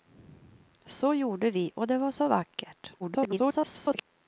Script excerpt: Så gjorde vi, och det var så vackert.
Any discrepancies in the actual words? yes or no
yes